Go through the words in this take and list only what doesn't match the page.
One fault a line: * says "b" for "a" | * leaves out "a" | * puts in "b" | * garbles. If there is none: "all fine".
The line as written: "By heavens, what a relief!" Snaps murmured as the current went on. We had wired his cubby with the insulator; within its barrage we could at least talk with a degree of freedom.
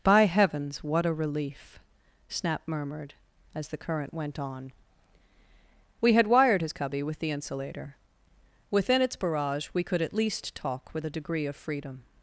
* says "Snap" for "Snaps"